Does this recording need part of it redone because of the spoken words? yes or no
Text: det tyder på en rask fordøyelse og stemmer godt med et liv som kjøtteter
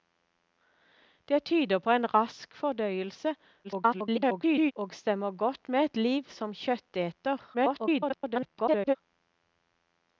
yes